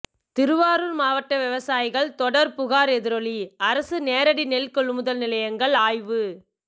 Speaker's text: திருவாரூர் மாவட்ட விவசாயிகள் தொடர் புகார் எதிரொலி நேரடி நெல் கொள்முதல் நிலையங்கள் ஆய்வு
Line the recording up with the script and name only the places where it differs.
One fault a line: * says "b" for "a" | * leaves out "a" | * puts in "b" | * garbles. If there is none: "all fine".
* puts in "அரசு"